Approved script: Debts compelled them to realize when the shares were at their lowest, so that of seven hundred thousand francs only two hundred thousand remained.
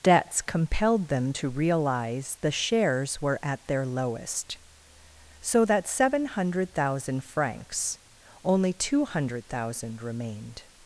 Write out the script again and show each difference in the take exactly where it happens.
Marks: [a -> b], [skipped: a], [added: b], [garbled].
Debts compelled them to realize [skipped: when] the shares were at their lowest, so that [skipped: of] seven hundred thousand francs only two hundred thousand remained.